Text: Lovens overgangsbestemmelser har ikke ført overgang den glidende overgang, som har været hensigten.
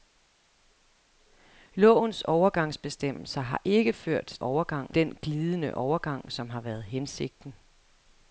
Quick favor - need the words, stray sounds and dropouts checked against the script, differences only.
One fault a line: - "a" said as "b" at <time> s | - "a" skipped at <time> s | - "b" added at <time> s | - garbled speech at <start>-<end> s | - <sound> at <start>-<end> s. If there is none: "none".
none